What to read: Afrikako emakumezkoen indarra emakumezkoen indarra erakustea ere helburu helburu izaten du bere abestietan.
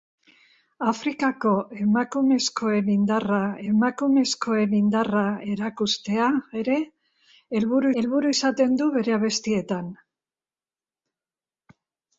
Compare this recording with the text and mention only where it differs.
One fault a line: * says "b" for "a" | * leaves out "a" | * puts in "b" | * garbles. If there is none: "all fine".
all fine